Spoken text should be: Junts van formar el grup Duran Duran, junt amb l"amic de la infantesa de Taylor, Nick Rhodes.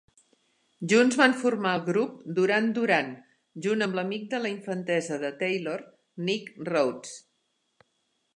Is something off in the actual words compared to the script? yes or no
no